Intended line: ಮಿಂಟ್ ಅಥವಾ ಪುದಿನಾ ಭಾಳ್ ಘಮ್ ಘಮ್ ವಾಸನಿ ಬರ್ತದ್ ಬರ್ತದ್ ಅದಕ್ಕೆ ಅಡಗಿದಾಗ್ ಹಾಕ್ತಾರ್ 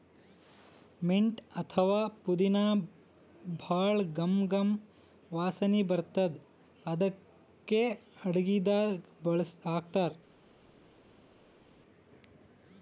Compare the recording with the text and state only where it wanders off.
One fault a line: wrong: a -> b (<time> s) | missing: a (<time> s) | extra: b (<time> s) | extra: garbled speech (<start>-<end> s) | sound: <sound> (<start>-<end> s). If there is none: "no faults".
missing: ಬರ್ತದ್ (6.4 s)